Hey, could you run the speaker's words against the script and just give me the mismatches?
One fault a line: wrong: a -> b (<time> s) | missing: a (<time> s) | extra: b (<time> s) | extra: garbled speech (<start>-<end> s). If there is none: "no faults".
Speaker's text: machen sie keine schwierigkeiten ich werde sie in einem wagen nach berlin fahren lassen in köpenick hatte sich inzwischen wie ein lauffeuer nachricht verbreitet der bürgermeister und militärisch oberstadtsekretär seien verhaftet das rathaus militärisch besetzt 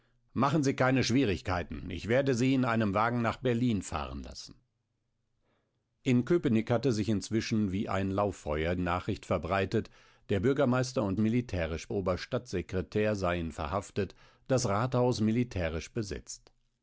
no faults